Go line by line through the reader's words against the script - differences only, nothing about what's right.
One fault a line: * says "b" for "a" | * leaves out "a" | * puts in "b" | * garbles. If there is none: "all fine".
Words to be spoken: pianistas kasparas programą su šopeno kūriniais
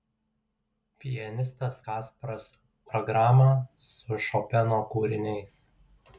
all fine